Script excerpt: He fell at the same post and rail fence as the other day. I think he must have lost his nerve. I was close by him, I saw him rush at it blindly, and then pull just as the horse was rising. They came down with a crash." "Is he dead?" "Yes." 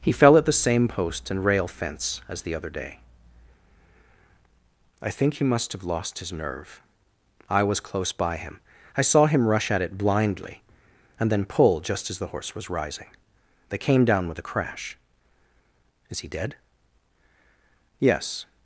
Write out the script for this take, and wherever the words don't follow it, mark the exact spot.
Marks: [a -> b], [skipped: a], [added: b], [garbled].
He fell at the same post and rail fence as the other day. I think he must have lost his nerve. I was close by him, I saw him rush at it blindly, and then pull just as the horse was rising. They came down with a crash." "Is he dead?" "Yes."